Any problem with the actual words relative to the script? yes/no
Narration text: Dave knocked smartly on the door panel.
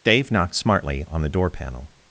no